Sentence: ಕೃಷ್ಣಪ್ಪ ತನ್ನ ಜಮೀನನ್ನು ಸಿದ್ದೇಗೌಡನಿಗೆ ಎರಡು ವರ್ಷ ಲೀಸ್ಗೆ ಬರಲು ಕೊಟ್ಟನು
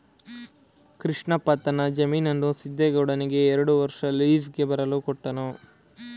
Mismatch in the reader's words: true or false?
false